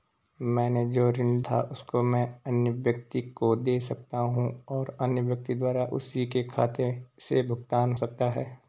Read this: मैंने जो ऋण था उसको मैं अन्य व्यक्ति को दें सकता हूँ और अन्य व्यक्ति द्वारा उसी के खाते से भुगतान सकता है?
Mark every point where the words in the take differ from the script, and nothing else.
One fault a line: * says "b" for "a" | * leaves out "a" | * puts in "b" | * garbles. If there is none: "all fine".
all fine